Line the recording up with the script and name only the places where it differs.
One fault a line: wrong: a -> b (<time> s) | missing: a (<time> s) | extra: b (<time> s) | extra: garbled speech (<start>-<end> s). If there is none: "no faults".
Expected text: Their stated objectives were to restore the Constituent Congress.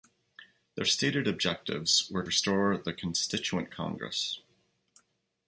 missing: to (2.2 s)